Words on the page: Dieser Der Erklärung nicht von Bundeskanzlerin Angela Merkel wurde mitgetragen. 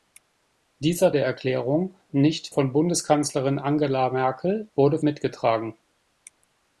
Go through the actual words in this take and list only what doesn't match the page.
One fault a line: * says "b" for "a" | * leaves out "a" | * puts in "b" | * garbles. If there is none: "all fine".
all fine